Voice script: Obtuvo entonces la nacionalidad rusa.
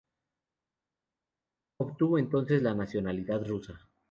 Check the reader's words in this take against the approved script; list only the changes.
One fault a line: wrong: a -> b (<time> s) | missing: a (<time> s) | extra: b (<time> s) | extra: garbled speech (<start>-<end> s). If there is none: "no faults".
no faults